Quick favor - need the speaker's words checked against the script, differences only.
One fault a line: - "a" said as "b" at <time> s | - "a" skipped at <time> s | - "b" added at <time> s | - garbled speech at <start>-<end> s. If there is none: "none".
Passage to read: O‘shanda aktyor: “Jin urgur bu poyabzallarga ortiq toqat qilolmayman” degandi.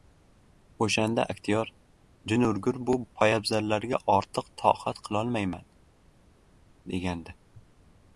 none